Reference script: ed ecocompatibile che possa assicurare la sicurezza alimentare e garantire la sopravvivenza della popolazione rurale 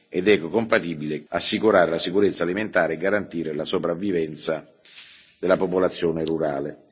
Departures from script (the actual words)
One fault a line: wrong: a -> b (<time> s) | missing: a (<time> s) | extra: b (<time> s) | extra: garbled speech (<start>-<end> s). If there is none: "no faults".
missing: che possa (1.2 s)